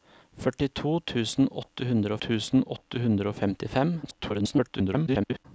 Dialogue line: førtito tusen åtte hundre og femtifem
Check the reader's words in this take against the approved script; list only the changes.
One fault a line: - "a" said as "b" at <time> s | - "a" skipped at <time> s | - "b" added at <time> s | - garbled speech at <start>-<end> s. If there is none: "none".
- "tusen åtte hundre" added at 2.3 s
- garbled speech at 4.0-5.5 s